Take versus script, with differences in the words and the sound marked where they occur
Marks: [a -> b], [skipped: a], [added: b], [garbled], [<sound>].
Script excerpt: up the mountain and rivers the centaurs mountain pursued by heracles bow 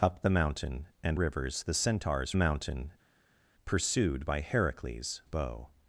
up the mountain and rivers the centaurs mountain pursued by heracles bow